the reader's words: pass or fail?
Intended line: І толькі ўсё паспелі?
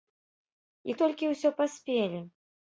pass